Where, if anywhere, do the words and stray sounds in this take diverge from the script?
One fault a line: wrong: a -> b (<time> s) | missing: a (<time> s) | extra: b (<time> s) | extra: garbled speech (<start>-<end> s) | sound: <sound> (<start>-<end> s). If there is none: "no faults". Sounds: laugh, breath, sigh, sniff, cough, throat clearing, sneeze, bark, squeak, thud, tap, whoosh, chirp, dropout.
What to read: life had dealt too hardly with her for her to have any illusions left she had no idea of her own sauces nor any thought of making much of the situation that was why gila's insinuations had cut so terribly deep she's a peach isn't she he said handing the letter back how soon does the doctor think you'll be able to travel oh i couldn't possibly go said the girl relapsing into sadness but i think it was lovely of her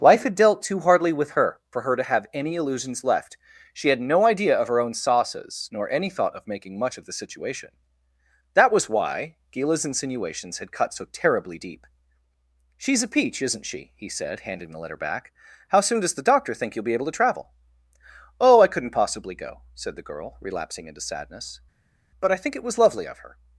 no faults